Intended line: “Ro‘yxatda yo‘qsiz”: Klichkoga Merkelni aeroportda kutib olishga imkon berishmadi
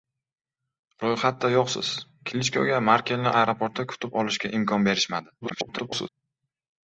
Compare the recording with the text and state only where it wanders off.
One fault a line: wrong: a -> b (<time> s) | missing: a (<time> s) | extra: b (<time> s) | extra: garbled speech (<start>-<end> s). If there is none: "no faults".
extra: garbled speech (5.4-6.1 s)